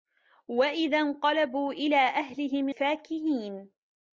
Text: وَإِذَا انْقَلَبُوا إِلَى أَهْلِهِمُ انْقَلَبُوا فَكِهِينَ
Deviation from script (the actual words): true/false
true